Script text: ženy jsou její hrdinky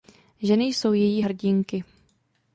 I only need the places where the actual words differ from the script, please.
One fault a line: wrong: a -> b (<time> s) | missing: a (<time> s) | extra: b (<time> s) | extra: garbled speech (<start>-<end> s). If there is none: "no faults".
no faults